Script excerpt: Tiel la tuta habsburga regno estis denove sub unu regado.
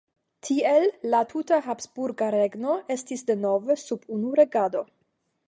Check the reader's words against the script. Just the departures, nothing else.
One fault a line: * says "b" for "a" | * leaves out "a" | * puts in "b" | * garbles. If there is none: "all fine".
all fine